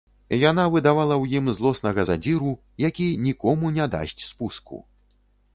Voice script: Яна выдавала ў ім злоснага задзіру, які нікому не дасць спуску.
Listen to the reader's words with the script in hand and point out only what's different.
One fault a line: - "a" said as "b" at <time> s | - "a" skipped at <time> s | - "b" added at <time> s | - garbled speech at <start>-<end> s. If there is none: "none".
none